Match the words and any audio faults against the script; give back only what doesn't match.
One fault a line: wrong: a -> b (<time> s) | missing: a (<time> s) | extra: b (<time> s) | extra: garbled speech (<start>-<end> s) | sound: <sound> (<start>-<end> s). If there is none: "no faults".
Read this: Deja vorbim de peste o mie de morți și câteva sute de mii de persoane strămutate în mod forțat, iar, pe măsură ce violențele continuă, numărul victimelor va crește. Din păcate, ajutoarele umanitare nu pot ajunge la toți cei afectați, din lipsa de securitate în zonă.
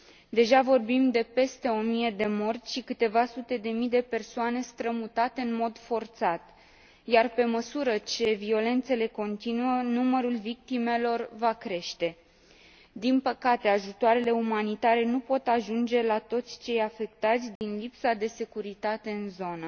sound: dropout (17.6-17.6 s)